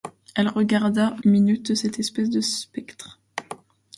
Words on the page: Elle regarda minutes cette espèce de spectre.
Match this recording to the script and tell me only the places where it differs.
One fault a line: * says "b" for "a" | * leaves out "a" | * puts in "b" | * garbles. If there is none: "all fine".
all fine